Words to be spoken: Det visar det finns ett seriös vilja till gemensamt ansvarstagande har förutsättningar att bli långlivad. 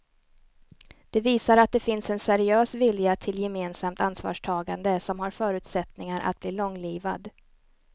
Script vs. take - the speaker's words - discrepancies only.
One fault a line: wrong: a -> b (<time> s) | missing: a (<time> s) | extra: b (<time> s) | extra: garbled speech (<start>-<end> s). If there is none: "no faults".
extra: att (1.6 s)
wrong: ett -> en (2.1 s)
extra: som (5.0 s)